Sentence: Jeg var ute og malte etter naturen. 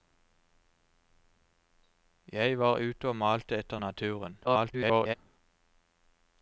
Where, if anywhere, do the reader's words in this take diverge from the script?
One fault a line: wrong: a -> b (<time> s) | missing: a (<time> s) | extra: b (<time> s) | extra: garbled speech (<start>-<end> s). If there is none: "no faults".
extra: garbled speech (4.4-5.1 s)